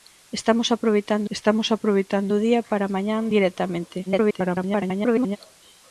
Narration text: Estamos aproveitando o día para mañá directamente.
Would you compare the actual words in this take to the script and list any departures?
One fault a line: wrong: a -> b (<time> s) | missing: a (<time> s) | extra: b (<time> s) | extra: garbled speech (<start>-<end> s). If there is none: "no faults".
extra: estamos aproveitando (1.3 s)
extra: garbled speech (4.1-5.4 s)